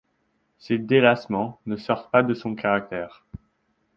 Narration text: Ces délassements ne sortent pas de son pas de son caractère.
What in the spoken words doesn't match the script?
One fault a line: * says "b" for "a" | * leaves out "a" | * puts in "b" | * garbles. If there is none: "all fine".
* leaves out "pas de son"